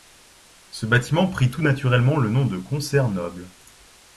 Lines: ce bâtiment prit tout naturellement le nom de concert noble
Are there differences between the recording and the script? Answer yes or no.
no